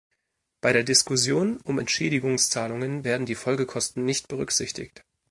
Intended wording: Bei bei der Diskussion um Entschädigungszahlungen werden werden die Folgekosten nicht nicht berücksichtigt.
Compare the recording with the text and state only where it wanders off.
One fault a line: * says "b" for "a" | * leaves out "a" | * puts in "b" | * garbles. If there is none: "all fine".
* leaves out "bei"
* leaves out "werden"
* leaves out "nicht"